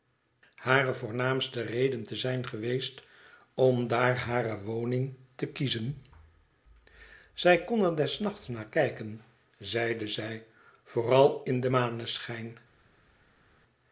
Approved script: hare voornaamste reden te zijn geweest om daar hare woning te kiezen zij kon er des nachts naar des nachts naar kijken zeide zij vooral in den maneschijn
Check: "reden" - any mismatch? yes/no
no